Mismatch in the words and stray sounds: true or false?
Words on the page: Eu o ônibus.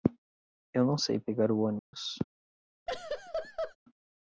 true